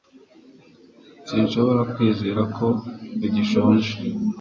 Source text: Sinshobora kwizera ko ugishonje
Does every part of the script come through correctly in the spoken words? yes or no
yes